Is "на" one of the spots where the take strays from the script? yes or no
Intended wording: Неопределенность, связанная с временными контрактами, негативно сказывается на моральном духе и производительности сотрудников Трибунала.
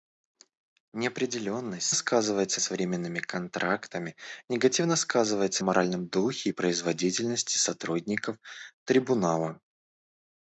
yes